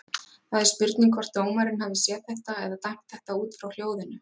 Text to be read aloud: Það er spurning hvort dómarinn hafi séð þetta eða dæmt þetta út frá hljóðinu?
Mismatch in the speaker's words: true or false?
false